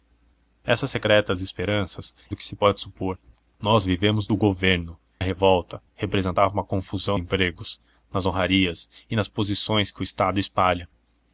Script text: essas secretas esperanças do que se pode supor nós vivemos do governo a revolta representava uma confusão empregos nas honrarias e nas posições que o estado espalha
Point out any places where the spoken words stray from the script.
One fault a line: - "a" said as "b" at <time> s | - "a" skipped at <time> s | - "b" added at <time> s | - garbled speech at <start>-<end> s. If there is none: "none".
none